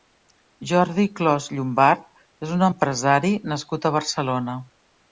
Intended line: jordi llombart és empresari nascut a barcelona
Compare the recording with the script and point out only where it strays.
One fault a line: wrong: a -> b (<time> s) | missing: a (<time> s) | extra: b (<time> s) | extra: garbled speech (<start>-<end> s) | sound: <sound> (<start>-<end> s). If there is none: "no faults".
extra: clos (1.2 s)
extra: un (2.6 s)